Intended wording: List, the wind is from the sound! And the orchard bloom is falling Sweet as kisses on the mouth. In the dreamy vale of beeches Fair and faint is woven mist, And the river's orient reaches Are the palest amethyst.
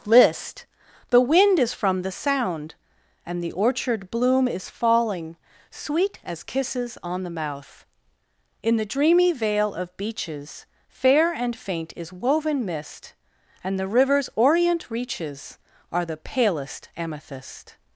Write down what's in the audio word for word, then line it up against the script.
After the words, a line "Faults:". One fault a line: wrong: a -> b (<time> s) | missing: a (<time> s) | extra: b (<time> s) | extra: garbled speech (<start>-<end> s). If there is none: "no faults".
List, the wind is from the sound! And the orchard bloom is falling Sweet as kisses on the mouth. In the dreamy vale of beeches Fair and faint is woven mist, And the river's orient reaches Are the palest amethyst.
Faults:
no faults